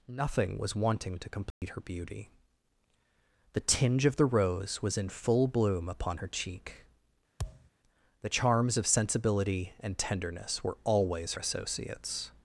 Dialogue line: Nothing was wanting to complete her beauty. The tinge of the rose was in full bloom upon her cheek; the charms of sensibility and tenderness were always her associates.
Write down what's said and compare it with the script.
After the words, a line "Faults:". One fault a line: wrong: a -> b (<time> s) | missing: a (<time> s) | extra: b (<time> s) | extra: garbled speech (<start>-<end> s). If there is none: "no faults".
Nothing was wanting to complete her beauty. The tinge of the rose was in full bloom upon her cheek; the charms of sensibility and tenderness were always associates.
Faults:
missing: her (11.3 s)